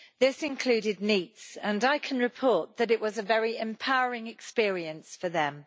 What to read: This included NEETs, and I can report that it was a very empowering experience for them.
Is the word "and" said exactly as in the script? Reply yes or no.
yes